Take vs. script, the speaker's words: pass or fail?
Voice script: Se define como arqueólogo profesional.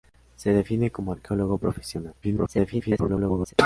fail